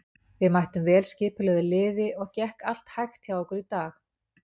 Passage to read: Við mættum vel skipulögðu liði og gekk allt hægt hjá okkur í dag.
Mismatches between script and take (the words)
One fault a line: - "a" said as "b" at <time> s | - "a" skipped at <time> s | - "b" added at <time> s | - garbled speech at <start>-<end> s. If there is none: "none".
none